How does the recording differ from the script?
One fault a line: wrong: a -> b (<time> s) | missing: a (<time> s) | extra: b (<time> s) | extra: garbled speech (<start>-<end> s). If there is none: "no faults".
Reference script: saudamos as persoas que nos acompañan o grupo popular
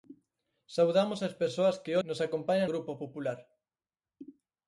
no faults